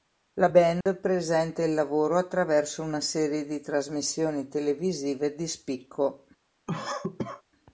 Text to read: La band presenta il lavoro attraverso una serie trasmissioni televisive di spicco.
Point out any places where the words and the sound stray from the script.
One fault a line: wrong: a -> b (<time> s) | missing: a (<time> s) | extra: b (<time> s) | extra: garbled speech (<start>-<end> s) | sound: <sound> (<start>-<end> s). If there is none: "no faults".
sound: dropout (0.8-0.9 s)
extra: di (3.4 s)
sound: cough (6.7-7.4 s)